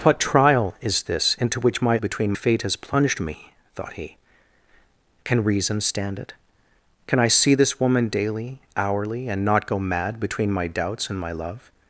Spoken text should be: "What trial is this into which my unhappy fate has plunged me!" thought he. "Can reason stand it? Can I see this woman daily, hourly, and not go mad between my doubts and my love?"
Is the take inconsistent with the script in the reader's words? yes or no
yes